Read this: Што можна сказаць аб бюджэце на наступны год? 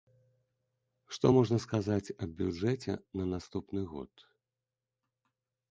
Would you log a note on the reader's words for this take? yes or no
no